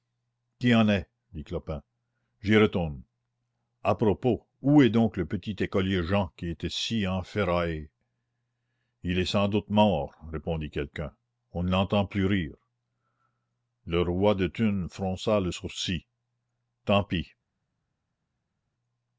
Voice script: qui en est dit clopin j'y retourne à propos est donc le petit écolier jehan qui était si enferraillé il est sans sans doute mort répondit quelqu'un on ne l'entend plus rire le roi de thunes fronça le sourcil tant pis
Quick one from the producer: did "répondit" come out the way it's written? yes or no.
yes